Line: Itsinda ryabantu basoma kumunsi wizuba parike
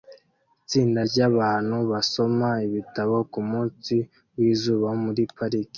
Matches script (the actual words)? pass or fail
fail